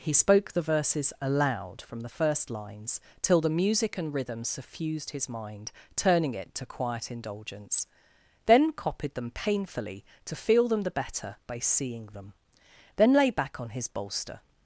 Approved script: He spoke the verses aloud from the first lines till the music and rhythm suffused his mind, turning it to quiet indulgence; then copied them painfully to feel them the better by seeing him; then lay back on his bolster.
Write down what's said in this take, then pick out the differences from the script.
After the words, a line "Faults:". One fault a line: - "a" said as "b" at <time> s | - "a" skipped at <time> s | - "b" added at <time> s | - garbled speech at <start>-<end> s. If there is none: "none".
He spoke the verses aloud from the first lines till the music and rhythm suffused his mind, turning it to quiet indulgence; then copied them painfully to feel them the better by seeing them; then lay back on his bolster.
Faults:
- "him" said as "them" at 12.1 s